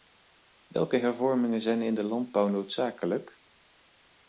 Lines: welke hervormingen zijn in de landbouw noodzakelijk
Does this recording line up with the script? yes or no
yes